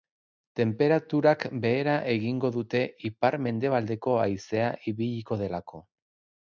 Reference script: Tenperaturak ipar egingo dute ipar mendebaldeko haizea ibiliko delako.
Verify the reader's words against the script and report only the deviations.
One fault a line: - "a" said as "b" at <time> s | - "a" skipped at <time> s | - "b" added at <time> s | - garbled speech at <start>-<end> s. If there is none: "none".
- "ipar" said as "behera" at 1.6 s